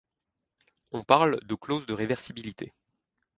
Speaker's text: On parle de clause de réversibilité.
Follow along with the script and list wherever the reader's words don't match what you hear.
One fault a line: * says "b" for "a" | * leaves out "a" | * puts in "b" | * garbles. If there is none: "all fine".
all fine